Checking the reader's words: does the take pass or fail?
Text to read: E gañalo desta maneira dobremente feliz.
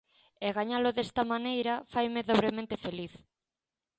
fail